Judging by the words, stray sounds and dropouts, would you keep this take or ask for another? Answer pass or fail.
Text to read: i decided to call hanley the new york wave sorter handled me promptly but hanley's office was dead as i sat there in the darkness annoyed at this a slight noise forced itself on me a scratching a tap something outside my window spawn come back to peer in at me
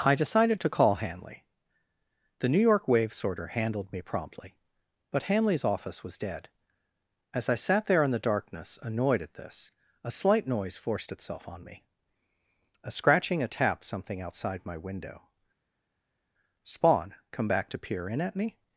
pass